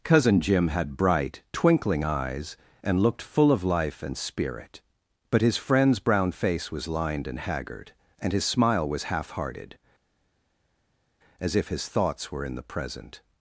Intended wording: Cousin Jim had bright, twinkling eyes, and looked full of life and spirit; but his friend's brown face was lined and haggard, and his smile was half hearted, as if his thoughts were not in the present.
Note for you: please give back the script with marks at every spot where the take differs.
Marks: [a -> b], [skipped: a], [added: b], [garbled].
Cousin Jim had bright, twinkling eyes, and looked full of life and spirit; but his friend's brown face was lined and haggard, and his smile was half hearted, as if his thoughts were [skipped: not] in the present.